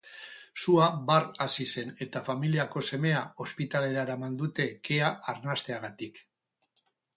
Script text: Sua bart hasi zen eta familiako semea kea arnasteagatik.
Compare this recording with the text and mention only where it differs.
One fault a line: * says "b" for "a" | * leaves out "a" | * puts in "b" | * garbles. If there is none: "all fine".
* puts in "ospitalera eraman dute"